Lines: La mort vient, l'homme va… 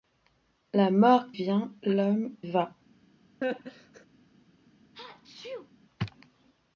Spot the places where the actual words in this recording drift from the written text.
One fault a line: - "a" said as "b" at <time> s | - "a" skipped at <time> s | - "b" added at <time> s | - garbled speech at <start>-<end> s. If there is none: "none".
none